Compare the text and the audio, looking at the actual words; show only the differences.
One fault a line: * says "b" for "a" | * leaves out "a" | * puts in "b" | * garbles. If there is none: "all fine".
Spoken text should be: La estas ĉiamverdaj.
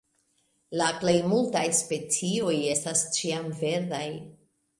* puts in "plej multaj specioj"